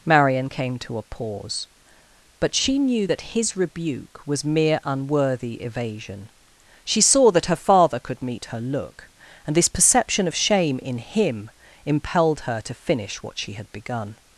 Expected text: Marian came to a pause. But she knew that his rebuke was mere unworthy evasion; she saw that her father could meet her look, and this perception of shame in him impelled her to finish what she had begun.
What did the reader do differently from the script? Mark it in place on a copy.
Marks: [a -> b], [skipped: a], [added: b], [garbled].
Marian came to a pause. But she knew that his rebuke was mere unworthy evasion; she saw that her father could meet her look, and this perception of shame in him impelled her to finish what she had begun.